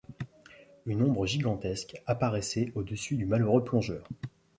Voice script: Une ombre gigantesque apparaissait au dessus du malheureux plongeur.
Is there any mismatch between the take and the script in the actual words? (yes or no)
no